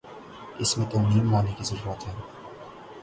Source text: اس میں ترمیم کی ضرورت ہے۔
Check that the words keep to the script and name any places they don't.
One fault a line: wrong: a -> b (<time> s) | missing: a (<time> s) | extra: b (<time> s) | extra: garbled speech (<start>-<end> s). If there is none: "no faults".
extra: لانے (1.3 s)